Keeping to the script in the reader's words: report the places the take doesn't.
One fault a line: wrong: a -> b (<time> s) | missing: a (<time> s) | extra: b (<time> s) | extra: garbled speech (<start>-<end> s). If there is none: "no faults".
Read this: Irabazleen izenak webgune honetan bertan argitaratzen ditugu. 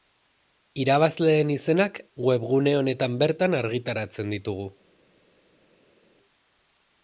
no faults